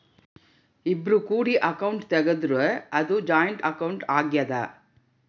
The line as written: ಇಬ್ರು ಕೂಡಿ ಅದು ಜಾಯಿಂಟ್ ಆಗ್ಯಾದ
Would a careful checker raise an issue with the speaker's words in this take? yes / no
yes